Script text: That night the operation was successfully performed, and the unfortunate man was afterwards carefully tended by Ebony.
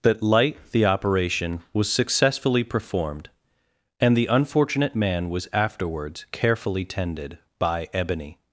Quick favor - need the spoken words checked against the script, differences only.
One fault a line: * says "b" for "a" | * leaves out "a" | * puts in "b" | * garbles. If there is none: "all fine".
* says "light" for "night"